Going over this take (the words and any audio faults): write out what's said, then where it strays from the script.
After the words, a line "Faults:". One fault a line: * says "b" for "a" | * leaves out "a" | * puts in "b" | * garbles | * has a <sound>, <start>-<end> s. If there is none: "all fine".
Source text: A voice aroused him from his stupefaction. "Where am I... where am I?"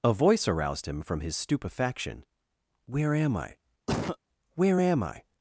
A voice aroused him from his stupefaction. "Where am I... where am I?"
Faults:
* has a cough, 3.9-4.2 s